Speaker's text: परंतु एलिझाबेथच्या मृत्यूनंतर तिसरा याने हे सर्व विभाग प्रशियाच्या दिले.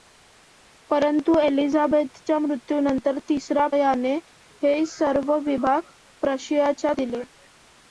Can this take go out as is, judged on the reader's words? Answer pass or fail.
pass